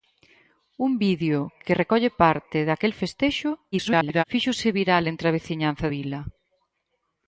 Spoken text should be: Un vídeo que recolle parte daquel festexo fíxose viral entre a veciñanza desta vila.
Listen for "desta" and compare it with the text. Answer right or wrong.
wrong